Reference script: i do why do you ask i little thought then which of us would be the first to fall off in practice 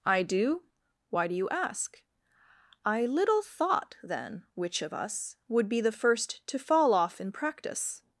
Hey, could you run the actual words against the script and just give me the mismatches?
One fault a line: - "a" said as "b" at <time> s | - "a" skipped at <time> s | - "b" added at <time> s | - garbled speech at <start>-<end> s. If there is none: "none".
none